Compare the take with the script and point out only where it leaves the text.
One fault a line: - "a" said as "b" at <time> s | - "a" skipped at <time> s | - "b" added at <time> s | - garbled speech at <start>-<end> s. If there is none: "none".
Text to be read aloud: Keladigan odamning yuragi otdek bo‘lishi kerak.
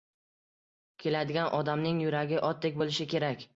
none